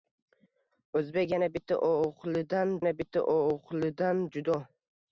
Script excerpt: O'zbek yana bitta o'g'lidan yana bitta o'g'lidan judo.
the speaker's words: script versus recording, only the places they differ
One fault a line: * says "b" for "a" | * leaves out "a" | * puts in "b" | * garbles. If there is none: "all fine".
all fine